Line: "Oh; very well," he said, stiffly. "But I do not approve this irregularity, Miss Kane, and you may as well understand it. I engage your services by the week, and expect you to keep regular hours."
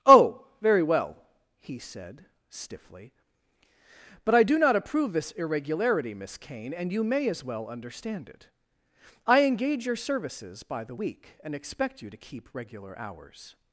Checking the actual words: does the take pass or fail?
pass